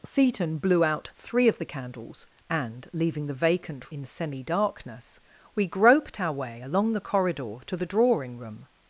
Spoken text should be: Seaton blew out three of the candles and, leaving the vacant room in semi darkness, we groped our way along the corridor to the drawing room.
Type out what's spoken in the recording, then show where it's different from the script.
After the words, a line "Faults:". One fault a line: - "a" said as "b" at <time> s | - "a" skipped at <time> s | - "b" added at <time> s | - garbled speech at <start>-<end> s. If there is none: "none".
Seaton blew out three of the candles and, leaving the vacant in semi darkness, we groped our way along the corridor to the drawing room.
Faults:
- "room" skipped at 3.9 s